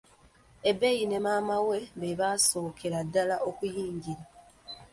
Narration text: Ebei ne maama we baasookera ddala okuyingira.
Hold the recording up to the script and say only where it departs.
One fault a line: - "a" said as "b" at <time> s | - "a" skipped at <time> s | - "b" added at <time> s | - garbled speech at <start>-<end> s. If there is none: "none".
- "be" added at 2.0 s